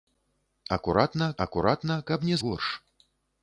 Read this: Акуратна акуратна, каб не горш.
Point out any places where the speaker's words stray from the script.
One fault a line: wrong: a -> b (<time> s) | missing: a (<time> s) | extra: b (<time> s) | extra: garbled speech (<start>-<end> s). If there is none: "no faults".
no faults